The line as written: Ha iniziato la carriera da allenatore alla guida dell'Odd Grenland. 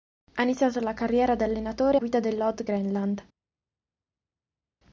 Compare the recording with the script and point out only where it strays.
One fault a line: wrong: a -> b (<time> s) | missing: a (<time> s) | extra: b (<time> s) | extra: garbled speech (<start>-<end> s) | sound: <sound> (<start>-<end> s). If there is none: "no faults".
missing: alla (2.0 s)